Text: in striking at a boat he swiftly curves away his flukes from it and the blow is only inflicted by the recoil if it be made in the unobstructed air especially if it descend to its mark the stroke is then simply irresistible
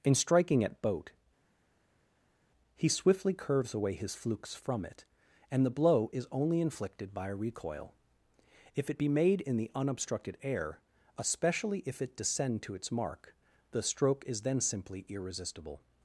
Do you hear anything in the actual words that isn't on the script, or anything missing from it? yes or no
yes